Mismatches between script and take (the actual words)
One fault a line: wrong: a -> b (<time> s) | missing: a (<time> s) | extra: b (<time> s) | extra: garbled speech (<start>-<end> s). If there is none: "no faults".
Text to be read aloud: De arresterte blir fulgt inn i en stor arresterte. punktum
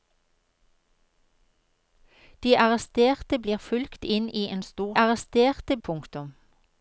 no faults